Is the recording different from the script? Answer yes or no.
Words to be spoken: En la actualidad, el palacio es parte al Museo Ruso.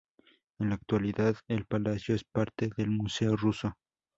yes